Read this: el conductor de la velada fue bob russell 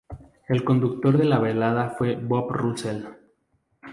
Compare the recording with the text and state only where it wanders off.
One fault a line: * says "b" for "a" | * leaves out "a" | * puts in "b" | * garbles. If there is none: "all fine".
all fine